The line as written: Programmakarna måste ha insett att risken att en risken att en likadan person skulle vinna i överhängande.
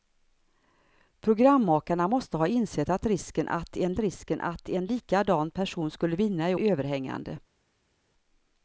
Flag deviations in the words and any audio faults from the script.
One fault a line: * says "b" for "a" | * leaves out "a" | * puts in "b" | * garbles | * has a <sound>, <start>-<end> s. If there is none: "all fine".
all fine